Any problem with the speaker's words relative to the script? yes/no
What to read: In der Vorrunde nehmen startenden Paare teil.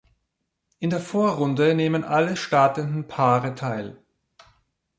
yes